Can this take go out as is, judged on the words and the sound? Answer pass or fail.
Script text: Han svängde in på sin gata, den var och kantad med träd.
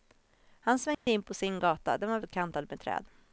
fail